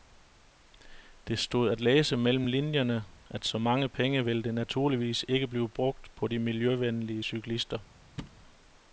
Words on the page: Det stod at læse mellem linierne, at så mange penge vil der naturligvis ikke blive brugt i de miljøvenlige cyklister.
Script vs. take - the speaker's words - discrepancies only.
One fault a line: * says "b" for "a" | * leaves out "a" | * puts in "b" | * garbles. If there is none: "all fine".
* says "på" for "i"